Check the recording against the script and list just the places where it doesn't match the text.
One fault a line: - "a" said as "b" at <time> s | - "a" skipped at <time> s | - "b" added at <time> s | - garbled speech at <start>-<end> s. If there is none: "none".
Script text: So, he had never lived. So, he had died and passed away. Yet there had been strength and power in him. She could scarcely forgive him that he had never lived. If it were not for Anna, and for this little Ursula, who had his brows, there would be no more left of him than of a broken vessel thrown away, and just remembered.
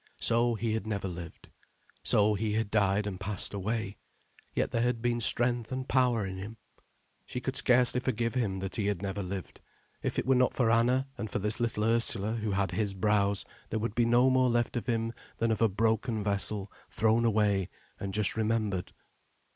none